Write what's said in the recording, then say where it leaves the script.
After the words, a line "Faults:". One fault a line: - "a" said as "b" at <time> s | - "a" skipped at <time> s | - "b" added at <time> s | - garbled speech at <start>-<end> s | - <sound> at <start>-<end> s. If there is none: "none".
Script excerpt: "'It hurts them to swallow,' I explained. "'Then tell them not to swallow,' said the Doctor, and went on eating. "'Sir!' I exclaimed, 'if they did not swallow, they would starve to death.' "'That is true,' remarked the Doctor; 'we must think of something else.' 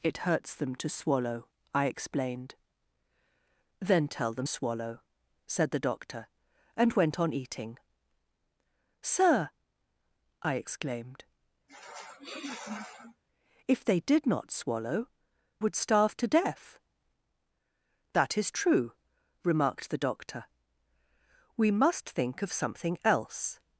"'It hurts them to swallow,' I explained. "'Then tell them swallow,' said the Doctor, and went on eating. "'Sir!' I exclaimed, 'if they did not swallow, would starve to death.' "'That is true,' remarked the Doctor; 'we must think of something else.'
Faults:
- "not to" skipped at 4.5 s
- sniff at 11.7-13.2 s
- "they" skipped at 15.1 s